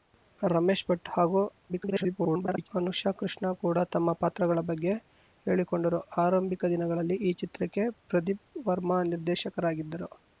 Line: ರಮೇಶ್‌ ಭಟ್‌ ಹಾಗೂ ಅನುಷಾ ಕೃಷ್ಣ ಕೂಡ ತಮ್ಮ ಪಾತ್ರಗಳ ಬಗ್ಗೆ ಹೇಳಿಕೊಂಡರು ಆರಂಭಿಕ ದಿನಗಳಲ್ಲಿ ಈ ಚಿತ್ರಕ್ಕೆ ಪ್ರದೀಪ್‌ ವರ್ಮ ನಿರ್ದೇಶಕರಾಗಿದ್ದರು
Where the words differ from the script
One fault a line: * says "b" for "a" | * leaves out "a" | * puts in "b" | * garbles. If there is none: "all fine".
* garbles